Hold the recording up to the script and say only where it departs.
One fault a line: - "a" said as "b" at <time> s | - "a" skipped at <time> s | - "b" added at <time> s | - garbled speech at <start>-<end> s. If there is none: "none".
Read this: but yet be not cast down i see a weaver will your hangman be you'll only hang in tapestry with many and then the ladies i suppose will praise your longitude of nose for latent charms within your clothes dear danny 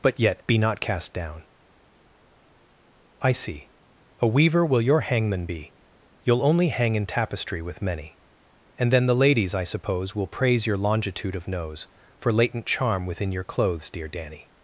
- "charms" said as "charm" at 12.7 s